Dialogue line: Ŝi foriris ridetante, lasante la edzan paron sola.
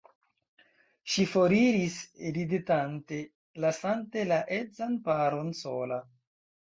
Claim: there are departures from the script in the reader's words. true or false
false